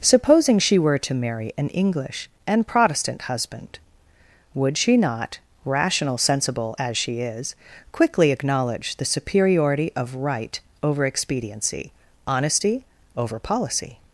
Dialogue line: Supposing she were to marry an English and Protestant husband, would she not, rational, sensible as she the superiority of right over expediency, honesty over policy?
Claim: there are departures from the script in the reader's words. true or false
true